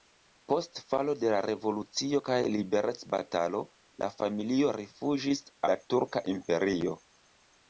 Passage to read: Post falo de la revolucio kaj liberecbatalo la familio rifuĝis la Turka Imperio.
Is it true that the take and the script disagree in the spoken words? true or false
false